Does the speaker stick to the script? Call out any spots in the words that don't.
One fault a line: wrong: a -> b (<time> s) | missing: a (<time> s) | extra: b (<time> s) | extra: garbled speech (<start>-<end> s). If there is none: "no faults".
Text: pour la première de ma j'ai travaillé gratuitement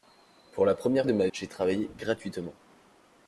no faults